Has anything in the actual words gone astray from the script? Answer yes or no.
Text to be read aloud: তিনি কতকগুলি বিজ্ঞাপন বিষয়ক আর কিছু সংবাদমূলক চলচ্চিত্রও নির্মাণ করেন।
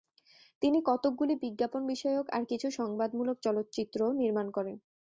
no